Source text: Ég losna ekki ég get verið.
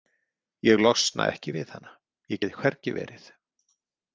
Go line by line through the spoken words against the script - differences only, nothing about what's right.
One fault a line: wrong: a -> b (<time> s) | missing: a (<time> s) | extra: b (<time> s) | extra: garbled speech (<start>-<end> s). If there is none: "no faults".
extra: við hana (1.6 s)
extra: hvergi (2.6 s)